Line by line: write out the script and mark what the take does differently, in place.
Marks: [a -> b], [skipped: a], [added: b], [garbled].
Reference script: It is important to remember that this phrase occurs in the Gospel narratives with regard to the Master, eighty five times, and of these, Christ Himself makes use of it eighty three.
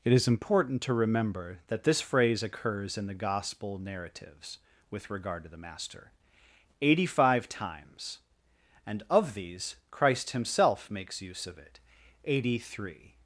It is important to remember that this phrase occurs in the Gospel narratives with regard to the Master, eighty five times, and of these, Christ Himself makes use of it eighty three.